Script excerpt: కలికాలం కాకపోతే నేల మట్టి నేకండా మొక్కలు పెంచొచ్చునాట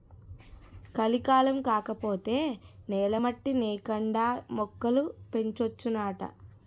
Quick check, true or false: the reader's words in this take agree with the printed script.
true